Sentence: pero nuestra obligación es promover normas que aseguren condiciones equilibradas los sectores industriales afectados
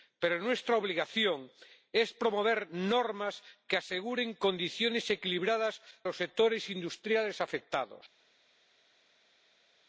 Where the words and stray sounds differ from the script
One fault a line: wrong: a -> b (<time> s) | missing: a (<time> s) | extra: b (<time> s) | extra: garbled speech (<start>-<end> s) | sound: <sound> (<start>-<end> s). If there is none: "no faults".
no faults